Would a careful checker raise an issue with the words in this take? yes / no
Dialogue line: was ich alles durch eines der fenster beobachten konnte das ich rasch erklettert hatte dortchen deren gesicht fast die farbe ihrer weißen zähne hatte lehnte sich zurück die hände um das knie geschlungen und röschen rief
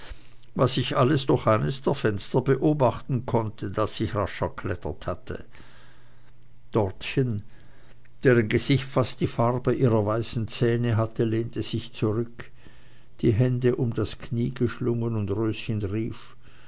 no